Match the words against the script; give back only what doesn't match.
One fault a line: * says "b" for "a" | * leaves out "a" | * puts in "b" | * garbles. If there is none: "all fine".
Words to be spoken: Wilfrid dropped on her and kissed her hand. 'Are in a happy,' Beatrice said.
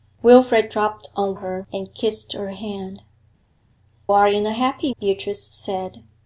all fine